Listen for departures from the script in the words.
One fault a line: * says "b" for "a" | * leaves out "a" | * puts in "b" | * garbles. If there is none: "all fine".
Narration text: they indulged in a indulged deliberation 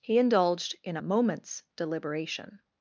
* says "he" for "they"
* says "moment's" for "indulged"